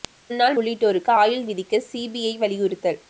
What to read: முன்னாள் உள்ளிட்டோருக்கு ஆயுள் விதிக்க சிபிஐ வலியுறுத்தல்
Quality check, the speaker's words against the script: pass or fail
pass